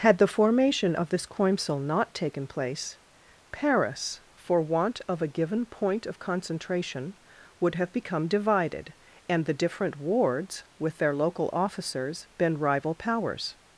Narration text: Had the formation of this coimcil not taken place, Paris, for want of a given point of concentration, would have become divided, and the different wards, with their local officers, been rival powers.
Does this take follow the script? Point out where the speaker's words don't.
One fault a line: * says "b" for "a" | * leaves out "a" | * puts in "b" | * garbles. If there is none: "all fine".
all fine